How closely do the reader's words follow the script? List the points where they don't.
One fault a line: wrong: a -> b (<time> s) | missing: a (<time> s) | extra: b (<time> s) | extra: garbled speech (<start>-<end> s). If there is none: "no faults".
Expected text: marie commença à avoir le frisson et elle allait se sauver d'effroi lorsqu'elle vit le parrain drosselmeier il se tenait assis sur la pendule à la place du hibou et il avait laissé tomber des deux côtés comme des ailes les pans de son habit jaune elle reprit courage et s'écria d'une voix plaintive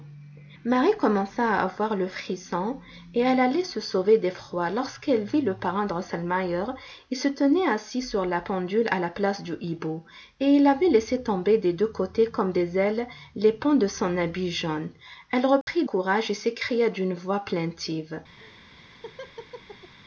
no faults